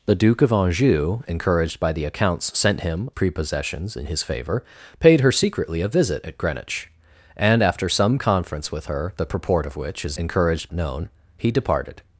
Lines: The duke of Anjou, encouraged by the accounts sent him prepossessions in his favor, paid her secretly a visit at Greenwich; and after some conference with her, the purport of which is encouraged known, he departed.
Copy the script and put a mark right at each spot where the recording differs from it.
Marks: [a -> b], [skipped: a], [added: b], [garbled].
The duke of Anjou, encouraged by the accounts sent him prepossessions in his favor, paid her secretly a visit at Greenwich; and after some conference with her, the purport of which is encouraged known, he departed.